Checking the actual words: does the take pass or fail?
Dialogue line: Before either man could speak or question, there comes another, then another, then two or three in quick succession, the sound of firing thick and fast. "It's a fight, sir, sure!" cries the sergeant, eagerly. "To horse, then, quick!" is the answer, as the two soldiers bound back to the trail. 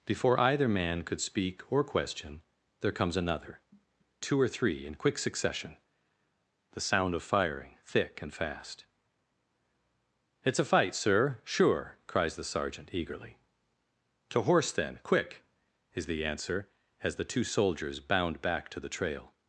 fail